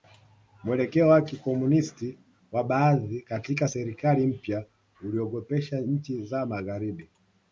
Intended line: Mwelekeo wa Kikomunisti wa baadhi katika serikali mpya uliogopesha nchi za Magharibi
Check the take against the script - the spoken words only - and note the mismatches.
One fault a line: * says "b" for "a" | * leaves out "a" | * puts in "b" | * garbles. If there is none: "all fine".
all fine